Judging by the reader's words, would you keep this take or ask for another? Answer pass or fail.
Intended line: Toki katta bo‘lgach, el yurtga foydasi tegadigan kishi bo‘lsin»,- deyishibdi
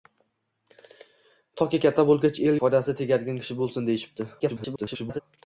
fail